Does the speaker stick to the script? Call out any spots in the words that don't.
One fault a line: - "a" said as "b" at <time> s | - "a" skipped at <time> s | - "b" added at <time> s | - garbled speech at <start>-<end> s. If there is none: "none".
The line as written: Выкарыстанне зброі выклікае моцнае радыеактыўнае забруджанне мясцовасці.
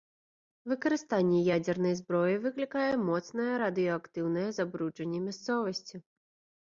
- "ядзернай" added at 1.6 s